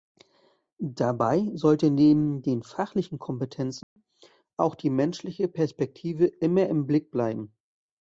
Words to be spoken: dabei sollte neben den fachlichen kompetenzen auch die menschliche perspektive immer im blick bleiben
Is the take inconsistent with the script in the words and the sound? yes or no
yes